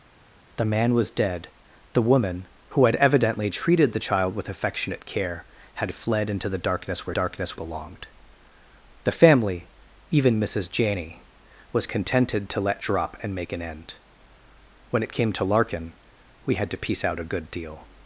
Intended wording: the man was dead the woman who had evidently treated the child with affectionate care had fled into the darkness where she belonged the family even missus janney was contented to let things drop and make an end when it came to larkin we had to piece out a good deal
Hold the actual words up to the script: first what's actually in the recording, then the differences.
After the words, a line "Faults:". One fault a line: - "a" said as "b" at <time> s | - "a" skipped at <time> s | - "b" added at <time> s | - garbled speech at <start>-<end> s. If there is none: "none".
the man was dead the woman who had evidently treated the child with affectionate care had fled into the darkness where darkness belonged the family even missus janney was contented to let drop and make an end when it came to larkin we had to piece out a good deal
Faults:
- "she" said as "darkness" at 7.1 s
- "things" skipped at 12.8 s